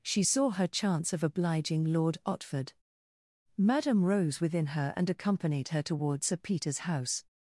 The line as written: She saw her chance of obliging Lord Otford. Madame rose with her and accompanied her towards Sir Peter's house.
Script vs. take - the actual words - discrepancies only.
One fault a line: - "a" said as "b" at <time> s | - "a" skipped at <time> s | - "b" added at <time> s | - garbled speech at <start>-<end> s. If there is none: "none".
- "with" said as "within" at 4.4 s